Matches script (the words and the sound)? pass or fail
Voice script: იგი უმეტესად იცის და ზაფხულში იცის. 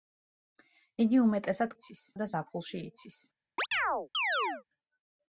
fail